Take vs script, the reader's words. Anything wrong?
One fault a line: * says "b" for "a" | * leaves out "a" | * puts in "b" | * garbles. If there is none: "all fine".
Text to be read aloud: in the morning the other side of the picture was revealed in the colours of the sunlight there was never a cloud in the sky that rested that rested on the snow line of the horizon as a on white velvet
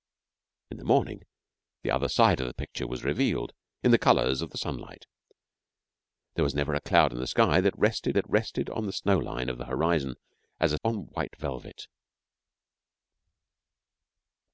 all fine